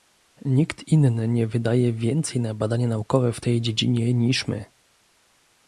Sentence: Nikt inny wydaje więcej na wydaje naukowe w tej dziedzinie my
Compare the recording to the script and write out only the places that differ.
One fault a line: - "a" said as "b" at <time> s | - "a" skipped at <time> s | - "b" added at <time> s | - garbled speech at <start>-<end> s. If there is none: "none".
- "nie" added at 1.3 s
- "wydaje" said as "badania" at 2.5 s
- "niż" added at 4.1 s